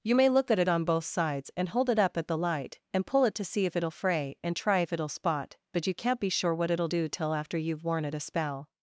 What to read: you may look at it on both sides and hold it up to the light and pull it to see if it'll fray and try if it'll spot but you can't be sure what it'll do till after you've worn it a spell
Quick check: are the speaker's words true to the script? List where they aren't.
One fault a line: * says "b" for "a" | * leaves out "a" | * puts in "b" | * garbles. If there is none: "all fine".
* says "at" for "to"